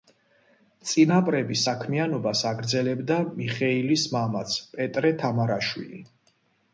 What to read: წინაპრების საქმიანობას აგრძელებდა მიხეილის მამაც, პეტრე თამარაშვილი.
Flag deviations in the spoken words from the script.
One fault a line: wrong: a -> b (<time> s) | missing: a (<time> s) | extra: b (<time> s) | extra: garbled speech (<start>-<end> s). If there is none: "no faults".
no faults